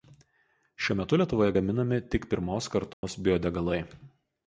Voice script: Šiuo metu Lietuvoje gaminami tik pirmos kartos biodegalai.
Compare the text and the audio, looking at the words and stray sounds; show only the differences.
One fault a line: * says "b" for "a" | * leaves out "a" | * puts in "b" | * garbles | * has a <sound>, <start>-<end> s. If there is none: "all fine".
* has a dropout, 2.9-3.0 s